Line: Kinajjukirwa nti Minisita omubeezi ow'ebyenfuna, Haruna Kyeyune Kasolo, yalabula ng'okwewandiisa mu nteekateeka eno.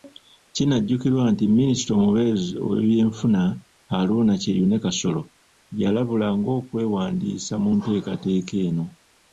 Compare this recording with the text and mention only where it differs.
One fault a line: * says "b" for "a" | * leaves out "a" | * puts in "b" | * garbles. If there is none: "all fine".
all fine